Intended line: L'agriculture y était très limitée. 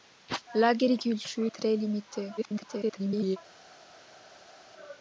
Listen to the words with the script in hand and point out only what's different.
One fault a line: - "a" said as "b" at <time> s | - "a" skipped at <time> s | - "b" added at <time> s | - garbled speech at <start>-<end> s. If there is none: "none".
- "y était" skipped at 1.4 s
- garbled speech at 2.4-3.4 s